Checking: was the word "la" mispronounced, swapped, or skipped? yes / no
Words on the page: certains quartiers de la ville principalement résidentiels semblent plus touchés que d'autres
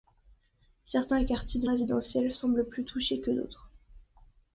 yes